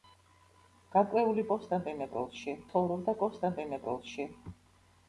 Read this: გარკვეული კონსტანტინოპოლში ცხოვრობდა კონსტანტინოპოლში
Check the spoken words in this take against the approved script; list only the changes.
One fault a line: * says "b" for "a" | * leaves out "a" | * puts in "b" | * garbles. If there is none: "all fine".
all fine